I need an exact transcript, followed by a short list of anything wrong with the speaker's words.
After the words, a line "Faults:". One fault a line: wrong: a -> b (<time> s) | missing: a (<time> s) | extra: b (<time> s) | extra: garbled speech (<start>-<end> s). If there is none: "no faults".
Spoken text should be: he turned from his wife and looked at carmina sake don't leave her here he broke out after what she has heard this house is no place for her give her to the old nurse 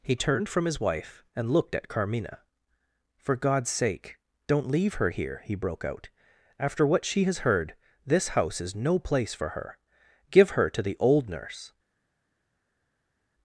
he turned from his wife and looked at carmina for god's sake don't leave her here he broke out after what she has heard this house is no place for her give her to the old nurse
Faults:
extra: for god's (3.2 s)